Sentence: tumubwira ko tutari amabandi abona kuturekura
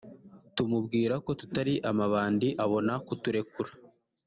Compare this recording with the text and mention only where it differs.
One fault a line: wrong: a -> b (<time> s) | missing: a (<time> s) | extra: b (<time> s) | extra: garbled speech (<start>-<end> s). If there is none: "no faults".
no faults